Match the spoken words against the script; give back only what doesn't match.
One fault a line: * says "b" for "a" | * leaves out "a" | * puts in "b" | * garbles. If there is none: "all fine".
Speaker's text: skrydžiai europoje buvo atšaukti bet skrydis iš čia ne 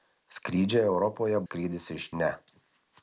* leaves out "buvo atšaukti bet"
* leaves out "čia"